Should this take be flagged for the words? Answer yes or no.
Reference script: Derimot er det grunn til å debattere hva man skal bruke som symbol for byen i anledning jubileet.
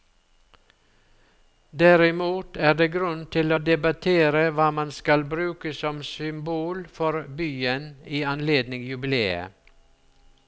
no